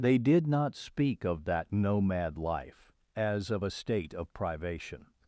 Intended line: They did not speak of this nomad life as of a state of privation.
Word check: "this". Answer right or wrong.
wrong